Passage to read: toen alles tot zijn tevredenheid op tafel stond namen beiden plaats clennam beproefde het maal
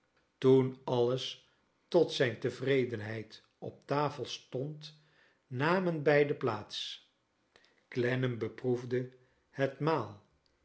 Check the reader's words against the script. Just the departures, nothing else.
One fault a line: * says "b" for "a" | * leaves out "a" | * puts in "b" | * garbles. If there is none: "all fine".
all fine